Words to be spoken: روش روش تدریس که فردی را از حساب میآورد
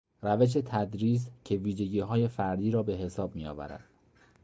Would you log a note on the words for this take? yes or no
yes